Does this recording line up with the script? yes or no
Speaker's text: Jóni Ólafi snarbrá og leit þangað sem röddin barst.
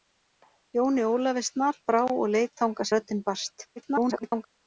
no